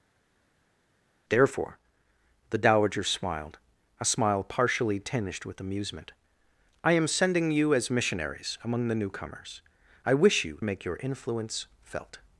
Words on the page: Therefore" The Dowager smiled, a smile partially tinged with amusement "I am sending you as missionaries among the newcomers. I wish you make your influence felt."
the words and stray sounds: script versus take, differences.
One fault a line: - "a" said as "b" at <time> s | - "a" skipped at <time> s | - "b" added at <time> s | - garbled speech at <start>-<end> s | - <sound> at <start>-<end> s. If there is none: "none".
none